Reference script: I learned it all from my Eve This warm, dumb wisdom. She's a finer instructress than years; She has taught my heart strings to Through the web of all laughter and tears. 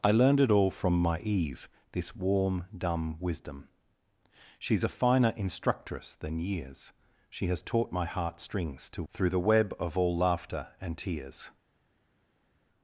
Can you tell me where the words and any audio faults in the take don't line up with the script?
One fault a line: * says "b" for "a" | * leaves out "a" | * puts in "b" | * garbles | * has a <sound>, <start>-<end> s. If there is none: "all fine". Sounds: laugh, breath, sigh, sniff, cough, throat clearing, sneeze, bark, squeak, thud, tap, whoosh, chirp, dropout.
all fine